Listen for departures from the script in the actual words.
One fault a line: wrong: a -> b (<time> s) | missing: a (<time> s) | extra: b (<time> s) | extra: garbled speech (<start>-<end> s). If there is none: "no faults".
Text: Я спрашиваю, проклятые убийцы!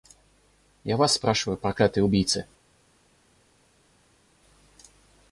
extra: вас (1.0 s)